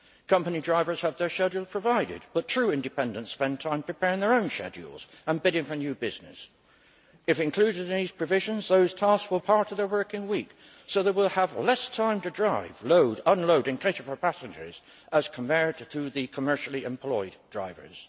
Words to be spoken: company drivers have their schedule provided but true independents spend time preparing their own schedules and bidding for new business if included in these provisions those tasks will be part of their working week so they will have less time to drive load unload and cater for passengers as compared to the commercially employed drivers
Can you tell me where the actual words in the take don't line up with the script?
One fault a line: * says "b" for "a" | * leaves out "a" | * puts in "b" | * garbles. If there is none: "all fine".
* leaves out "be"